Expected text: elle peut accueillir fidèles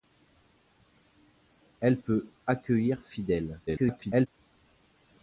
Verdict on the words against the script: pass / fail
fail